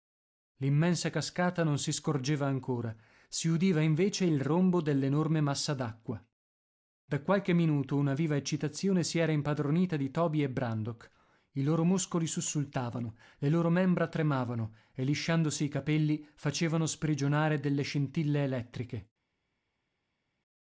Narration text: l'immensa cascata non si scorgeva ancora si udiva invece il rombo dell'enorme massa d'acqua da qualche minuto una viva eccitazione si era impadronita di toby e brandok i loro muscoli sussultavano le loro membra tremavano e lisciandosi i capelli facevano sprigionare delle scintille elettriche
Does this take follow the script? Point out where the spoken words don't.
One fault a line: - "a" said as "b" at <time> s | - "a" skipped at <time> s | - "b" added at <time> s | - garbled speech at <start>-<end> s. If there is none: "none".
none